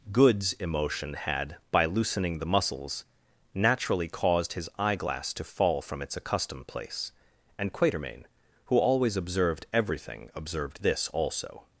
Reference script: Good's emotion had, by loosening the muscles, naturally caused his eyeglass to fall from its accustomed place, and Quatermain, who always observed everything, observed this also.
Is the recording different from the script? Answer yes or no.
no